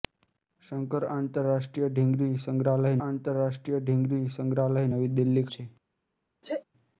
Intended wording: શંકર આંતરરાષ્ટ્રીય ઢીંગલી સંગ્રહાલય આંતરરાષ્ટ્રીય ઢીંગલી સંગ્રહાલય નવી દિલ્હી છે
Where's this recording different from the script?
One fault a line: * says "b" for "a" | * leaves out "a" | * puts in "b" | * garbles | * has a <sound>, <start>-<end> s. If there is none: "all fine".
* has a sneeze, 6.4-6.6 s